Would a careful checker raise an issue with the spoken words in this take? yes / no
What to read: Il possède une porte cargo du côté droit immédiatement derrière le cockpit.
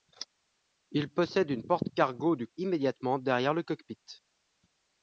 yes